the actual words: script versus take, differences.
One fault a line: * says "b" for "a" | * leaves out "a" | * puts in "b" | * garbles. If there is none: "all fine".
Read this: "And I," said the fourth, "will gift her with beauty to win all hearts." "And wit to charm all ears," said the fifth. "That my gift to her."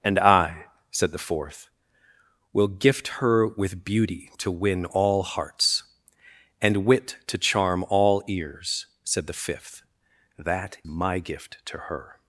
all fine